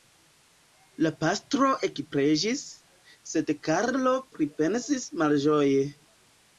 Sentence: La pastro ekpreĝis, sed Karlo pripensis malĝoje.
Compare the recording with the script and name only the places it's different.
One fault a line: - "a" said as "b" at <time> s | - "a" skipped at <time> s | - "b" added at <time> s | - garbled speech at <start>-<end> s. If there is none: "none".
none